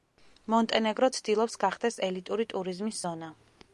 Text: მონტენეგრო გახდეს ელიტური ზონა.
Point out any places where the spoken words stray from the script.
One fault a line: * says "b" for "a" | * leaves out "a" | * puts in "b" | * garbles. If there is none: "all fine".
* puts in "ცდილობს"
* puts in "ტურიზმის"